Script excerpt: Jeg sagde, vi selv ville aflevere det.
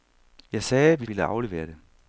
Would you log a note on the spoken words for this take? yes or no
yes